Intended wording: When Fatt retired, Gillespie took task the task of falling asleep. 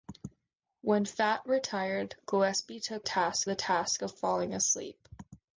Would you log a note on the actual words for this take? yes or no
no